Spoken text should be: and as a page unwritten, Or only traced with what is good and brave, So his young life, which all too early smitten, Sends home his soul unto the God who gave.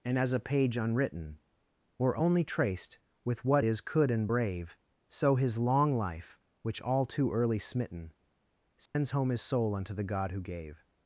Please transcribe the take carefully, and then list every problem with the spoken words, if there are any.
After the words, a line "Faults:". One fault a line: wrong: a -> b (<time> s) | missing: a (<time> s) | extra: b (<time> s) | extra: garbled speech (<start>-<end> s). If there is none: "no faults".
and as a page unwritten, Or only traced with what is could and brave, So his long life, which all too early smitten, Sends home his soul unto the God who gave.
Faults:
wrong: good -> could (3.8 s)
wrong: young -> long (5.6 s)